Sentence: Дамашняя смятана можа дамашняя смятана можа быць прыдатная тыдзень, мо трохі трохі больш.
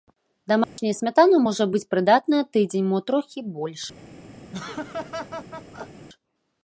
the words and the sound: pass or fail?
fail